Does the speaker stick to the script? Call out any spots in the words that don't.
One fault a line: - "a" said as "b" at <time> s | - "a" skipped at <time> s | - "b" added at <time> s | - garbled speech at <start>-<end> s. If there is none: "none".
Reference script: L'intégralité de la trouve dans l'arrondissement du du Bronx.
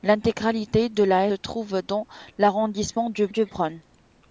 none